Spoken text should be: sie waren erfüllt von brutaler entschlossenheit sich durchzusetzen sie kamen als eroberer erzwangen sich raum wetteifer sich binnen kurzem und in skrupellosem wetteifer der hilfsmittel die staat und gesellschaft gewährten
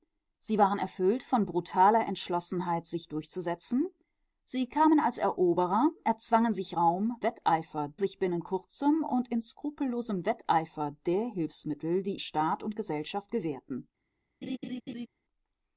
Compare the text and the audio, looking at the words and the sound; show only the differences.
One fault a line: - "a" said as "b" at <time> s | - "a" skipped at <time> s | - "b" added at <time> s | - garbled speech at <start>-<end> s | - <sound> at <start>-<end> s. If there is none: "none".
- laugh at 14.4-15.1 s